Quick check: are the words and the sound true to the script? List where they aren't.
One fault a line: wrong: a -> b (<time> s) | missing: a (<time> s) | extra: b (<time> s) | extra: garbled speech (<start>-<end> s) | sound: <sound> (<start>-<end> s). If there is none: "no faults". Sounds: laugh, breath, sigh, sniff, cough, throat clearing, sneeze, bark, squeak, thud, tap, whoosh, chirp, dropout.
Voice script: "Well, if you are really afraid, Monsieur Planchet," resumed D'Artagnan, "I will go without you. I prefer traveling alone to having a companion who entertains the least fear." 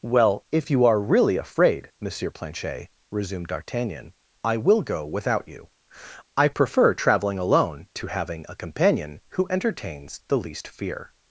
no faults